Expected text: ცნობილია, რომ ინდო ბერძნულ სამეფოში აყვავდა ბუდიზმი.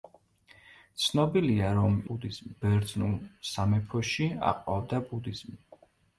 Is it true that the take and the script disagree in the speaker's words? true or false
true